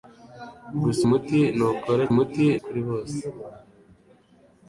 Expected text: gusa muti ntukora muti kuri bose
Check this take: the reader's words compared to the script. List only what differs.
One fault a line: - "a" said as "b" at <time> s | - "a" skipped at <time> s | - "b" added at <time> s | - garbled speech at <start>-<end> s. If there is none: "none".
none